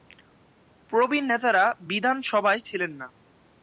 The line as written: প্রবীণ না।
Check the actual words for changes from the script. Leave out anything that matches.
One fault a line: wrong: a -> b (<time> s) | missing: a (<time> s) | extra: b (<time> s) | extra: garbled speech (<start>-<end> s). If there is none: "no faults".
extra: নেতারা বিধানসভায় ছিলেন (1.3 s)